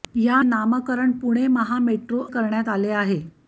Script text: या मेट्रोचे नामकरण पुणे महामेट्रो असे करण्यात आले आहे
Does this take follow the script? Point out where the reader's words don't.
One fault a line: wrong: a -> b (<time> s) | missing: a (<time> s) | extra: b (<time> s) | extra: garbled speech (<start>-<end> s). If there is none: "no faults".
missing: मेट्रोचे (0.4 s)
missing: असे (2.2 s)